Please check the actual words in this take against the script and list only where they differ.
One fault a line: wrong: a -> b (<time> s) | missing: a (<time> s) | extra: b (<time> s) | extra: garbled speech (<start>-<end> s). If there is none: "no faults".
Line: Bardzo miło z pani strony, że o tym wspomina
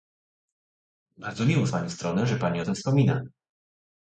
extra: pani (2.3 s)